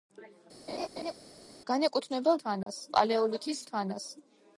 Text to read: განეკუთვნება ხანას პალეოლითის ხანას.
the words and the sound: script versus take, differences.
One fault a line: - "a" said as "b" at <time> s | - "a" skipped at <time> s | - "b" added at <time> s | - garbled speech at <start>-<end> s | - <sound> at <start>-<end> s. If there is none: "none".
- laugh at 0.7-1.1 s
- dropout at 2.6-2.7 s